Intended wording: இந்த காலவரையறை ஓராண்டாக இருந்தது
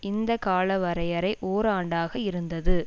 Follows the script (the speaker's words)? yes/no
yes